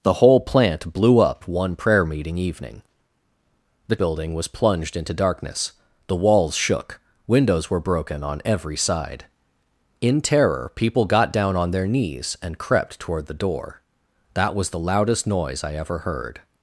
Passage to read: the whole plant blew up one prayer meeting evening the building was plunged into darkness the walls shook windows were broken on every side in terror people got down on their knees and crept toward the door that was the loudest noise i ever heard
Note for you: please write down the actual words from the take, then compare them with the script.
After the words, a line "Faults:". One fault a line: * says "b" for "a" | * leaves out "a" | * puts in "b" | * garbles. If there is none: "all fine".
the whole plant blew up one prayer meeting evening the building was plunged into darkness the walls shook windows were broken on every side in terror people got down on their knees and crept toward the door that was the loudest noise i ever heard
Faults:
all fine